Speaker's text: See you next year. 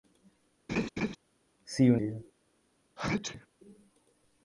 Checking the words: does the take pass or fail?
fail